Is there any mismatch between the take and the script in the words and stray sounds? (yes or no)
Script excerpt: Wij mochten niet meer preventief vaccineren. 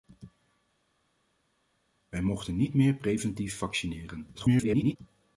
yes